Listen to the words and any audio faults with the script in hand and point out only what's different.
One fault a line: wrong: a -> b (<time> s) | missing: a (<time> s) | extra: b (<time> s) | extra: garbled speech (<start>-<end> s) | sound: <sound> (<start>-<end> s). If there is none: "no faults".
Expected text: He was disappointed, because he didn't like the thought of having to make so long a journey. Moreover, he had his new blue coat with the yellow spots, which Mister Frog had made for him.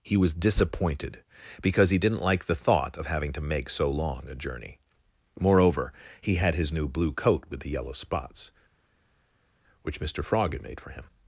no faults